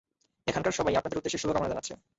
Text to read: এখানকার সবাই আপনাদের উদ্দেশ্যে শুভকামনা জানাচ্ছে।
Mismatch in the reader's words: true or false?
false